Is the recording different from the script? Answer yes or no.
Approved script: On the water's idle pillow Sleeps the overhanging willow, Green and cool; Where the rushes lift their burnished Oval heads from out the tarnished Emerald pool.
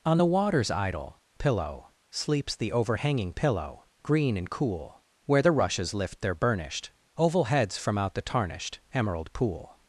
yes